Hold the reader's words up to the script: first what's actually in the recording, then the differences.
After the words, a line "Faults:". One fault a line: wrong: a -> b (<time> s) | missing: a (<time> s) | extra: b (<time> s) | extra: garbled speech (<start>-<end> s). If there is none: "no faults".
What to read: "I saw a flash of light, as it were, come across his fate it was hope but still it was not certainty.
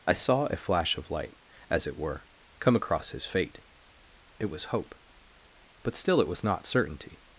"I saw a flash of light, as it were, come across his fate it was hope but still it was not certainty.
Faults:
no faults